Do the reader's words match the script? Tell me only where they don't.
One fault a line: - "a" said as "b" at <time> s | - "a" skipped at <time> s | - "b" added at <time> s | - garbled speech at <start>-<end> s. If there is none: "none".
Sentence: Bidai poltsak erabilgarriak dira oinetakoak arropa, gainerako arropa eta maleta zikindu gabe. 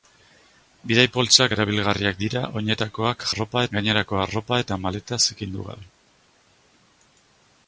none